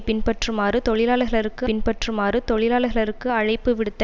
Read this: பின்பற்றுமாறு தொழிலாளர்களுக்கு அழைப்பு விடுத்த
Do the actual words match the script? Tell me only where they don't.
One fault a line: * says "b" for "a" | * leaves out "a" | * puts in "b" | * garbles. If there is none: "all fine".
* puts in "பின்பற்றுமாறு தொழிலாளர்களுக்கு"